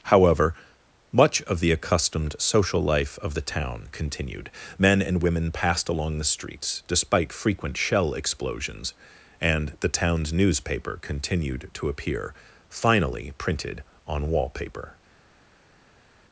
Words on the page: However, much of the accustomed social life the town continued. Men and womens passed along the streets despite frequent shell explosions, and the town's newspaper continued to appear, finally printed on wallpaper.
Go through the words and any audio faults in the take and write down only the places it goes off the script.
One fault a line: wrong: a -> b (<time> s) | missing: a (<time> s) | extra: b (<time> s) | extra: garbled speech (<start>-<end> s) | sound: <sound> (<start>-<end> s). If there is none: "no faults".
extra: of (3.2 s)
wrong: womens -> women (5.2 s)